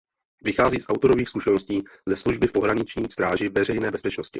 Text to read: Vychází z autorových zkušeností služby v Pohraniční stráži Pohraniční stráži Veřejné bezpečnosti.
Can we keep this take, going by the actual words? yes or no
no